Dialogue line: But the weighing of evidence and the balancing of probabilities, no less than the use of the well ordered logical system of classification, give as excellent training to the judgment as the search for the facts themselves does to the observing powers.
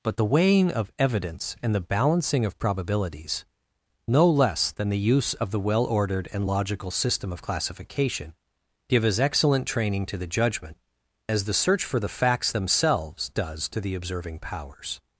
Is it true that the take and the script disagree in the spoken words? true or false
true